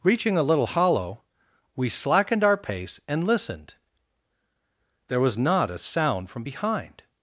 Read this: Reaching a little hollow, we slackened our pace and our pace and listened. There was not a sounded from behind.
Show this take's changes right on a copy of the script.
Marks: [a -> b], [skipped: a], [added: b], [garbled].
Reaching a little hollow, we slackened our pace and [skipped: our pace and] listened. There was not a [sounded -> sound] from behind.